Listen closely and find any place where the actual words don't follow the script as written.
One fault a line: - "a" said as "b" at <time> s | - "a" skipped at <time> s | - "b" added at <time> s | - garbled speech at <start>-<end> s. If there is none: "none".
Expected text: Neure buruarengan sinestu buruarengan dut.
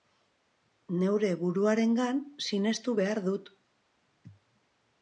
- "buruarengan" said as "behar" at 3.0 s